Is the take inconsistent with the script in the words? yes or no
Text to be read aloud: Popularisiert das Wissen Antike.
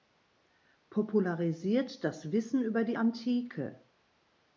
yes